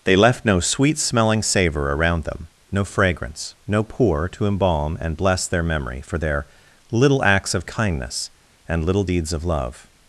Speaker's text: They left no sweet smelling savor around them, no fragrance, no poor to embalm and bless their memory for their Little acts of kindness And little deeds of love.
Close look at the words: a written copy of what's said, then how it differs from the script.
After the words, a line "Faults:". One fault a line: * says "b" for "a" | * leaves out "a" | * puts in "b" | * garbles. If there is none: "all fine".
They left no sweet smelling savor around them, no fragrance, no poor to embalm and bless their memory for their Little acts of kindness And little deeds of love.
Faults:
all fine